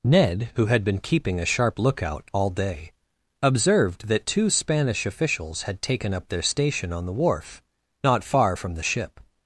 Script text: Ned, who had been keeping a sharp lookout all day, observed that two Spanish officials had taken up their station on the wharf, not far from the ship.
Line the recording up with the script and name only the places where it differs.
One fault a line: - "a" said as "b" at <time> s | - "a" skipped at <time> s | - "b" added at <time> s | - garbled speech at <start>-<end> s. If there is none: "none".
none